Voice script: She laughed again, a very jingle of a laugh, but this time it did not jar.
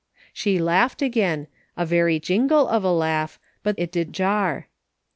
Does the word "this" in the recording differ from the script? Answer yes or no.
yes